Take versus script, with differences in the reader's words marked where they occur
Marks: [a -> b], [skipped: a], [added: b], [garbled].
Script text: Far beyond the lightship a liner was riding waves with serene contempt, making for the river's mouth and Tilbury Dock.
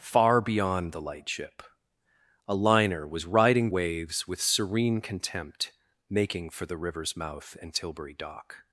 Far beyond the lightship a liner was riding waves with serene contempt, making for the river's mouth and Tilbury Dock.